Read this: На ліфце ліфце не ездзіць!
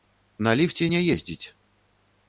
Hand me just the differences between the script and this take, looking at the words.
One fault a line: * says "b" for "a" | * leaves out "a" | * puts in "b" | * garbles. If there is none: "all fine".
* leaves out "ліфце"